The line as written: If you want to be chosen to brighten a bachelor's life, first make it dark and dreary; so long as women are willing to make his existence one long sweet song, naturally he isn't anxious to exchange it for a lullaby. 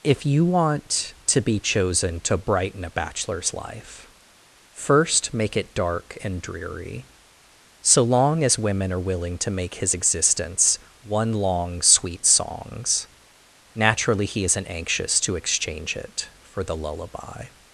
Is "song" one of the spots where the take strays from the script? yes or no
yes